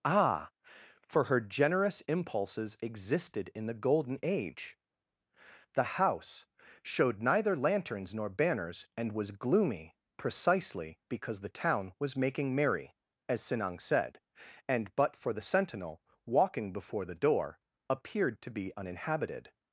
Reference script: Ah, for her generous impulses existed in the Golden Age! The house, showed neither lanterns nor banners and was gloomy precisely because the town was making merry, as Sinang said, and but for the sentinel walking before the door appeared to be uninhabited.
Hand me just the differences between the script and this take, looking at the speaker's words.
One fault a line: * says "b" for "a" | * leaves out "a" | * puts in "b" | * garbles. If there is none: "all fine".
all fine